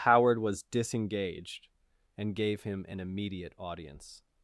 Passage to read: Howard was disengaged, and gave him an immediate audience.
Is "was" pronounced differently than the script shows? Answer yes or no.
no